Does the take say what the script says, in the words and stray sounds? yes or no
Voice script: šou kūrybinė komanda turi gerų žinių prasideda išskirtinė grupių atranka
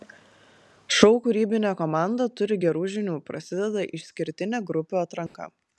no